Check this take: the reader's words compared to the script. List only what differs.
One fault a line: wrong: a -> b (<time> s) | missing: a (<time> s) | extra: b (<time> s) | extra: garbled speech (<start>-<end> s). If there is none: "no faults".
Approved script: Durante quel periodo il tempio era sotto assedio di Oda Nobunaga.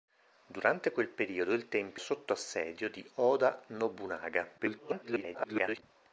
missing: era (2.0 s)
extra: garbled speech (4.6-5.8 s)